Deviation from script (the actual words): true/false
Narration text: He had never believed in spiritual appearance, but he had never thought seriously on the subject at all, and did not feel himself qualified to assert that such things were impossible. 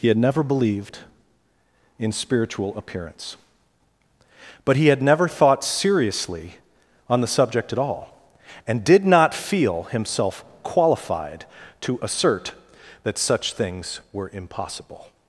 false